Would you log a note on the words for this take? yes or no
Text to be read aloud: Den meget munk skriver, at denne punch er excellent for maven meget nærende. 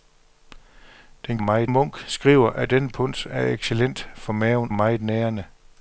no